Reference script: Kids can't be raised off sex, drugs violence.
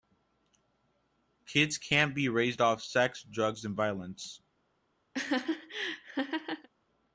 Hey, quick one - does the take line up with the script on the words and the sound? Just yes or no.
no